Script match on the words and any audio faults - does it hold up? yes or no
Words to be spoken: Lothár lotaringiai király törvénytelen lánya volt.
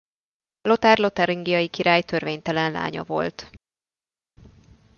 yes